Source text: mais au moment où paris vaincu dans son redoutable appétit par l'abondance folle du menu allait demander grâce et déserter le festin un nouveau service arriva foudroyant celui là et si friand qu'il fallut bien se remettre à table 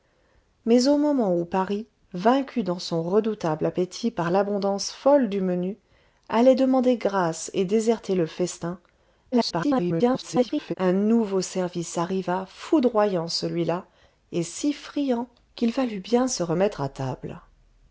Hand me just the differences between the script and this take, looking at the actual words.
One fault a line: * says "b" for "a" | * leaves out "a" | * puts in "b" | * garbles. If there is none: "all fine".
* garbles